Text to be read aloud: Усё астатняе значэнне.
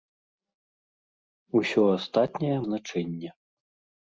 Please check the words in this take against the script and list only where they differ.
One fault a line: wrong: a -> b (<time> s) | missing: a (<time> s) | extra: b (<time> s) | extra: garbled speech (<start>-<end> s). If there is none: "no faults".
no faults